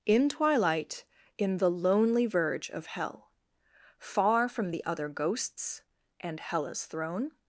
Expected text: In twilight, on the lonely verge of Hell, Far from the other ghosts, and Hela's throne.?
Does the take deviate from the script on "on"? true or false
true